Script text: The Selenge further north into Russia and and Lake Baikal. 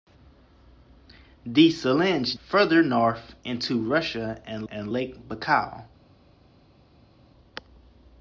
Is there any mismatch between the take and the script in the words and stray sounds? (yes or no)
no